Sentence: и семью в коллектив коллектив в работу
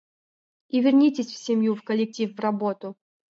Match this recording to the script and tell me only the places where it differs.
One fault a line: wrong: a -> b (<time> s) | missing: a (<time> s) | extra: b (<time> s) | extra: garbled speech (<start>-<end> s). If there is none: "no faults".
extra: вернитесь в (0.8 s)
missing: коллектив (2.4 s)